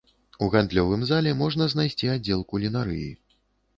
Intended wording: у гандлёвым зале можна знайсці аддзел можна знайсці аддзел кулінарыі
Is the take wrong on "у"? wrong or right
right